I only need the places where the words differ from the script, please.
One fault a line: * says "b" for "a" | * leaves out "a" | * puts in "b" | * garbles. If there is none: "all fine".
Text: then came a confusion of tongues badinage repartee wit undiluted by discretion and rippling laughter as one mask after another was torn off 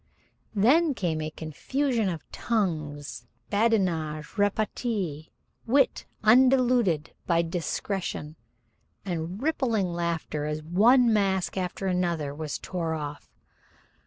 all fine